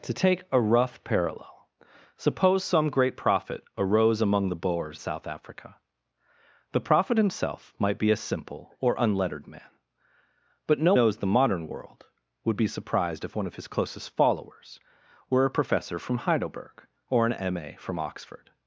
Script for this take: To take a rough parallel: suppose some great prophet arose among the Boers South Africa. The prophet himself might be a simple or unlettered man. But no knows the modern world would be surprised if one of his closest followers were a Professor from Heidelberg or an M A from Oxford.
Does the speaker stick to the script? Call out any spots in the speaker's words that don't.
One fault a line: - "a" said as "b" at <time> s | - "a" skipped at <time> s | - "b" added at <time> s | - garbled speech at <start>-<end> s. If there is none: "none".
none